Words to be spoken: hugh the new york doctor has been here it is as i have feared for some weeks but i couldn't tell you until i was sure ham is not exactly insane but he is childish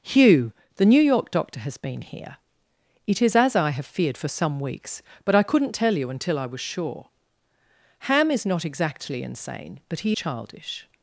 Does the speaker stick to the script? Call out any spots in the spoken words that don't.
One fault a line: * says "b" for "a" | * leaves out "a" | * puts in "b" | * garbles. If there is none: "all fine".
* leaves out "is"